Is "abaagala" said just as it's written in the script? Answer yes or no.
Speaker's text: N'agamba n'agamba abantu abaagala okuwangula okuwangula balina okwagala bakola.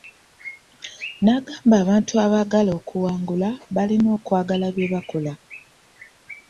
yes